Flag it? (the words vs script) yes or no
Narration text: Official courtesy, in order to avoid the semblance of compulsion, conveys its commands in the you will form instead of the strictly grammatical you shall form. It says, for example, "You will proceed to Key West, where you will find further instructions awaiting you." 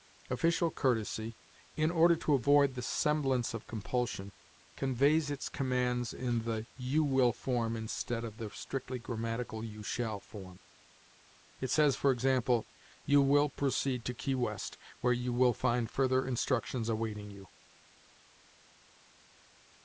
no